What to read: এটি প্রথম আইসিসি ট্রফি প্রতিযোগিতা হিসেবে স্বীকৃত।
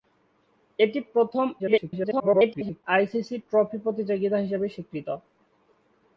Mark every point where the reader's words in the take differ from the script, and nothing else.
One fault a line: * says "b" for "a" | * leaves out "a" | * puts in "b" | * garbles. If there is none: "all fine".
* garbles